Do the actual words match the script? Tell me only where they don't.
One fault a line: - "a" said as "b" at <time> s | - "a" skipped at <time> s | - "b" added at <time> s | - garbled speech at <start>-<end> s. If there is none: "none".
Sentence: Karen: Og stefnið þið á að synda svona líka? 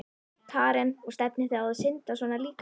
none